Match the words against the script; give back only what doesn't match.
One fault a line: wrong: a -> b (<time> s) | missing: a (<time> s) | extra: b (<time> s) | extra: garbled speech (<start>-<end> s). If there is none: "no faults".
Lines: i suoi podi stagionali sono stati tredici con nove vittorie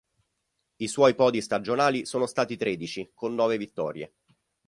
no faults